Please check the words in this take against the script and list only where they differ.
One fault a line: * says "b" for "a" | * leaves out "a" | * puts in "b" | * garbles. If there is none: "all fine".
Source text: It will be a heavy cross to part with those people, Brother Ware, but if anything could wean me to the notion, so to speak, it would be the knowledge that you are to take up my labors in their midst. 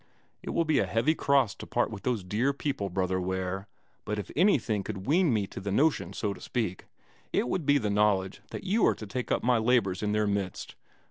* puts in "dear"